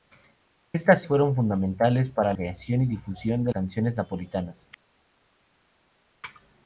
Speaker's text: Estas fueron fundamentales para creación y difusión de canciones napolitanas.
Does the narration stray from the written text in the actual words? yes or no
no